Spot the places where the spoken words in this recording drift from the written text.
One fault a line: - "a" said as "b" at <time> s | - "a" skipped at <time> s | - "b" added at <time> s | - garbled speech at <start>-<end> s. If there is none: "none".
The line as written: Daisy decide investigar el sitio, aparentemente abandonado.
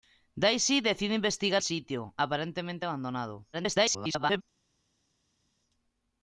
- "el" skipped at 1.6 s
- garbled speech at 3.5-4.4 s